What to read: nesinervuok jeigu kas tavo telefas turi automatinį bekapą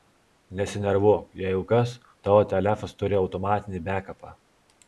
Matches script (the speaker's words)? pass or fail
pass